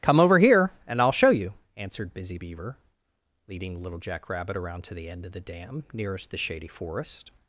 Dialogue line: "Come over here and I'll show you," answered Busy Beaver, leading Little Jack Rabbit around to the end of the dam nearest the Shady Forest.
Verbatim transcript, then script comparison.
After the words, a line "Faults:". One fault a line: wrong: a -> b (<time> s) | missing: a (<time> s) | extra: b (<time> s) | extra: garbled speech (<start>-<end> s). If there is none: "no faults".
"Come over here and I'll show you," answered Busy Beaver, leading Little Jack Rabbit around to the end of the dam nearest the Shady Forest.
Faults:
no faults